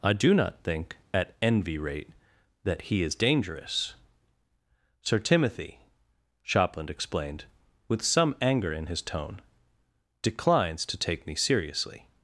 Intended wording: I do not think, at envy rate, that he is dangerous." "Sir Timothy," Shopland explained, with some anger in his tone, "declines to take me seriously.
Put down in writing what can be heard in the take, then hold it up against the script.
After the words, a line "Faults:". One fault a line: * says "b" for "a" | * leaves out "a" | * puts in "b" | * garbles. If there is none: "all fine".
I do not think, at envy rate, that he is dangerous." "Sir Timothy," Shopland explained, with some anger in his tone, "declines to take me seriously.
Faults:
all fine